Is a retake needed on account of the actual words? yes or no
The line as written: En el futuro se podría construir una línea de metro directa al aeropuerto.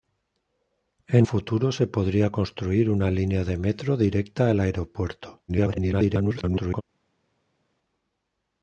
yes